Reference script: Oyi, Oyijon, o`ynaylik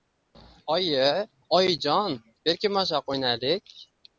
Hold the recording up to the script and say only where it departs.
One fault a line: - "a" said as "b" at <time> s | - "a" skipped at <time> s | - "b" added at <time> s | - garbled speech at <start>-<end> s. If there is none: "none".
- "berkinmachoq" added at 2.4 s